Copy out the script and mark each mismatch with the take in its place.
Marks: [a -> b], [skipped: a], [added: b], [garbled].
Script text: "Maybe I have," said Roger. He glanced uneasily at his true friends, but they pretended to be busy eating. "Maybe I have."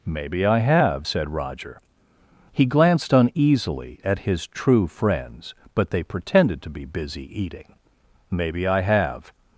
"Maybe I have," said Roger. He glanced uneasily at his true friends, but they pretended to be busy eating. "Maybe I have."